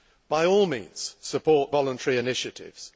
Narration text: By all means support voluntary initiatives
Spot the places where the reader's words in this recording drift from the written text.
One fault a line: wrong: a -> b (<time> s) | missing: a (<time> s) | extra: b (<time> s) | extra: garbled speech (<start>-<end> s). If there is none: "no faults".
no faults